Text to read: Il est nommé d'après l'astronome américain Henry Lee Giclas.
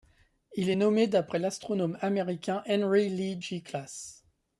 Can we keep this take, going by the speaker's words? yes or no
yes